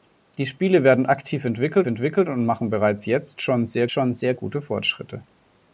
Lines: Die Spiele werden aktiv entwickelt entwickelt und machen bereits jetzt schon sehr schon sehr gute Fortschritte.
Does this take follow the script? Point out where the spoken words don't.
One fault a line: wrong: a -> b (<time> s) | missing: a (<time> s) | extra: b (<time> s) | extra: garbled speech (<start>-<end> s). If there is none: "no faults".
no faults